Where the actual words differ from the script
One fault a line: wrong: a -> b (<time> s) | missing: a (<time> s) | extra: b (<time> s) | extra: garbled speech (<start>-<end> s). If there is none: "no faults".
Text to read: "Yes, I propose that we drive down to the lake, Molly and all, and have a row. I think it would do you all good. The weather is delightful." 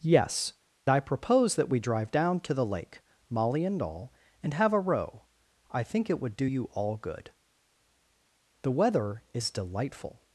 no faults